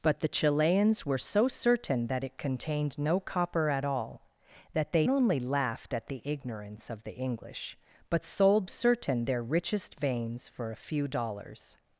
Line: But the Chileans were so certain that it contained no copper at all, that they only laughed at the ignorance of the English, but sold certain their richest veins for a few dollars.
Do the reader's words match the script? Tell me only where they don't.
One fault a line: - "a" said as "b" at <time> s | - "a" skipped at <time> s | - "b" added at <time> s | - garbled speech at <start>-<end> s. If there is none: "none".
none